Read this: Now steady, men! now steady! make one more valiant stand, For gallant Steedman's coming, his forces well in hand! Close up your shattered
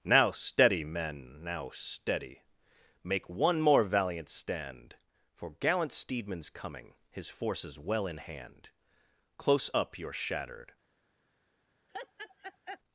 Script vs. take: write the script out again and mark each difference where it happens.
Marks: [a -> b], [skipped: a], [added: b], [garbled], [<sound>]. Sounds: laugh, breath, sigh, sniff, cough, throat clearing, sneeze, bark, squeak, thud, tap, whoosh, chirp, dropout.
Now steady, men! now steady! make one more valiant stand, For gallant Steedman's coming, his forces well in hand! Close up your shattered [laugh]